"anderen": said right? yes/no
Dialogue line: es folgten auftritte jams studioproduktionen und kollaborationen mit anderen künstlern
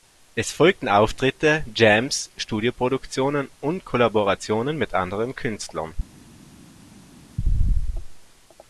yes